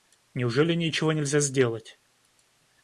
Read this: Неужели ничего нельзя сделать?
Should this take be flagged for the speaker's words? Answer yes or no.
no